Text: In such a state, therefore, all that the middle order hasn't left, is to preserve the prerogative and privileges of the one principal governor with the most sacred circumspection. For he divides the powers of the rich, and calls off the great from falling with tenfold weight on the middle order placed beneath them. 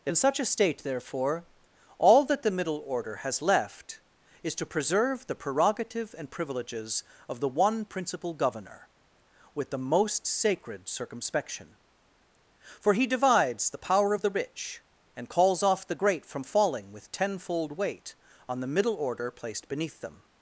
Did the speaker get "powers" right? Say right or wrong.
wrong